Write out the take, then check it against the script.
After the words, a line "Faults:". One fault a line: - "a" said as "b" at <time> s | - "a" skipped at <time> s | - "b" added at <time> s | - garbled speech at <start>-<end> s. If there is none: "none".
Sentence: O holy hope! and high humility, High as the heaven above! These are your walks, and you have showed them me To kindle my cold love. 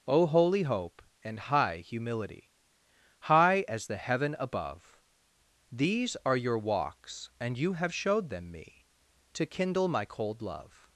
O holy hope! and high humility, High as the heaven above! These are your walks, and you have showed them me To kindle my cold love.
Faults:
none